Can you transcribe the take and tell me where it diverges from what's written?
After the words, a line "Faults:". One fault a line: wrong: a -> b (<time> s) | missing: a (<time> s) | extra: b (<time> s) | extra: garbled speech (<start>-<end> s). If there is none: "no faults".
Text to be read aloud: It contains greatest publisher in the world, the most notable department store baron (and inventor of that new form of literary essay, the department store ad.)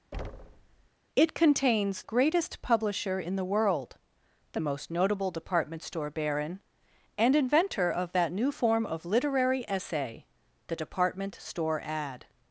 It contains greatest publisher in the world, the most notable department store baron (and inventor of that new form of literary essay, the department store ad.)
Faults:
no faults